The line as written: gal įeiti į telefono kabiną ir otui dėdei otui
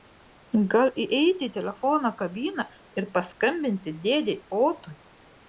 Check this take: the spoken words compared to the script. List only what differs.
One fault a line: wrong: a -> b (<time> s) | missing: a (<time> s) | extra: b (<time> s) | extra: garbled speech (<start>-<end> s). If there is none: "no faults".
wrong: otui -> paskambinti (3.2 s)